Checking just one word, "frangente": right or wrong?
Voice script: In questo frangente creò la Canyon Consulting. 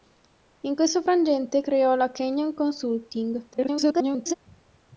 right